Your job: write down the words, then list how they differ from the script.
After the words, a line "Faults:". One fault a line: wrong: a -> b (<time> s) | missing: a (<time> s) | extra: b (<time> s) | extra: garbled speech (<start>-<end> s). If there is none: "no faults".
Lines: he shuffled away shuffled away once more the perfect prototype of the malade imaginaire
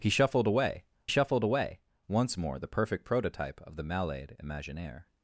he shuffled away shuffled away once more the perfect prototype of the malade imaginaire
Faults:
no faults